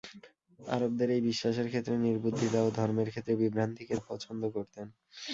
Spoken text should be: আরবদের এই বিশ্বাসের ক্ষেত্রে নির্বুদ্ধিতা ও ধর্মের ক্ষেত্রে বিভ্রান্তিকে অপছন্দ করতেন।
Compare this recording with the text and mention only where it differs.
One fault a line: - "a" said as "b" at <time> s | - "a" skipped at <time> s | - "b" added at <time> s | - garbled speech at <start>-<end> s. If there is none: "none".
none